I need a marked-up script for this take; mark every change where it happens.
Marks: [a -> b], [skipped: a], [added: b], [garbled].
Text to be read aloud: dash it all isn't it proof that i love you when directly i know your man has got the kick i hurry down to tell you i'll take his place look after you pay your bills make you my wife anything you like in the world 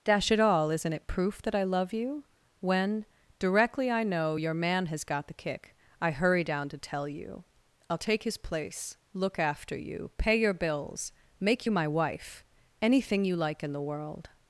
dash it all isn't it proof that i love you when directly i know your man has got the kick i hurry down to tell you i'll take his place look after you pay your bills make you my wife anything you like in the world